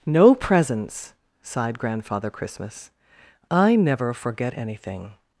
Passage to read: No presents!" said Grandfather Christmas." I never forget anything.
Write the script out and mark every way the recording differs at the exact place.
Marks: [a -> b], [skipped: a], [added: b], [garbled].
No presents!" [said -> sighed] Grandfather Christmas." I never forget anything.